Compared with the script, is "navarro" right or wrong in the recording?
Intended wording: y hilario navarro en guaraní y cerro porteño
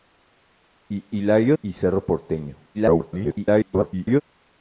wrong